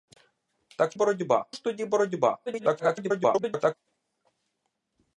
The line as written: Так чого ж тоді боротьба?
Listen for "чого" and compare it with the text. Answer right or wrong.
wrong